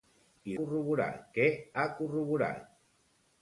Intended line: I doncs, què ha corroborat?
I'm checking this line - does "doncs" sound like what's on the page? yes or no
no